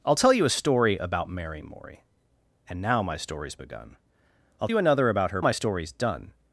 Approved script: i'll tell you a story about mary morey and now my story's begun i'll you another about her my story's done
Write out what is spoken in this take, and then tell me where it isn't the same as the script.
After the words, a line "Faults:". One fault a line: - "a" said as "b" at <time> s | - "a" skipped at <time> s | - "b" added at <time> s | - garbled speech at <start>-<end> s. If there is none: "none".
i'll tell you a story about mary morey and now my story's begun i'll you another about her my story's done
Faults:
none